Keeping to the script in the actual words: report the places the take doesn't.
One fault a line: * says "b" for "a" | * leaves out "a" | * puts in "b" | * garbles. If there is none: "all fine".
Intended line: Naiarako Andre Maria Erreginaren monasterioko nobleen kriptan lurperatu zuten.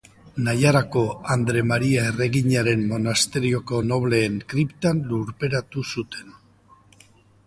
all fine